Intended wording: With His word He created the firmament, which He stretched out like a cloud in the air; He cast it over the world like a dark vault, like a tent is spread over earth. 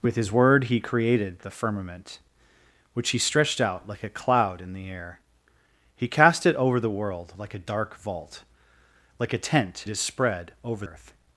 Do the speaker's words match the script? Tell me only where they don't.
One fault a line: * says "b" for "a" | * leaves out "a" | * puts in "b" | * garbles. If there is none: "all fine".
all fine